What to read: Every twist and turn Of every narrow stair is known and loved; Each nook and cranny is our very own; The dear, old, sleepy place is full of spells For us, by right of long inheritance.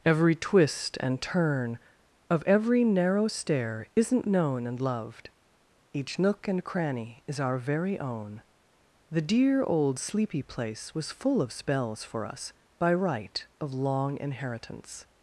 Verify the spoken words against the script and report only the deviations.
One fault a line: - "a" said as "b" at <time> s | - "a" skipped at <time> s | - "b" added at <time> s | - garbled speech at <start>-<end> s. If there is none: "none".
- "is" said as "isn't" at 4.0 s
- "is" said as "was" at 10.9 s